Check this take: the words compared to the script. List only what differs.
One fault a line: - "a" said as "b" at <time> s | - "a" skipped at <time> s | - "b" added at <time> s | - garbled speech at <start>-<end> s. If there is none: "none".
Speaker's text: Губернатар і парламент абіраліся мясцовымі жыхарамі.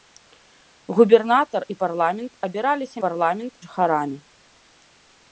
- "мясцовымі" said as "парламент" at 3.0 s